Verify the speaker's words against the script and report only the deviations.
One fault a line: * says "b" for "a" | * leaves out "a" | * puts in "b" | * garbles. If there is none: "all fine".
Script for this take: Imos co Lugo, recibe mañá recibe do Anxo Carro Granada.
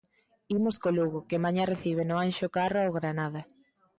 * says "que" for "recibe"
* says "no" for "do"
* puts in "ao"